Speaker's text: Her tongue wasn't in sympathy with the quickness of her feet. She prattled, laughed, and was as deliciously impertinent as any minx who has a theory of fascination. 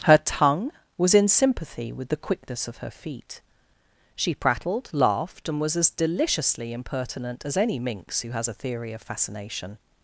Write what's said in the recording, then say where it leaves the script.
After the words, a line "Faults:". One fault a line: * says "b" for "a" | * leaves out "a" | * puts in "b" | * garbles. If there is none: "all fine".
Her tongue was in sympathy with the quickness of her feet. She prattled, laughed, and was as deliciously impertinent as any minx who has a theory of fascination.
Faults:
* says "was" for "wasn't"